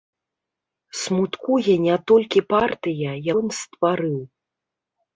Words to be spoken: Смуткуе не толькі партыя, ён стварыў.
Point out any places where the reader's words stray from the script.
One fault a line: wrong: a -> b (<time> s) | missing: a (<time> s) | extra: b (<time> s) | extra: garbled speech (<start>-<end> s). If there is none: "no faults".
no faults